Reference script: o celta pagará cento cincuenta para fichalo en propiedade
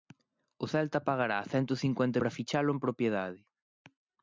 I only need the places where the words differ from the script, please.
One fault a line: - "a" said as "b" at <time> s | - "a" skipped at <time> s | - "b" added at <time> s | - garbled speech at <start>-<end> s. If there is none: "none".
none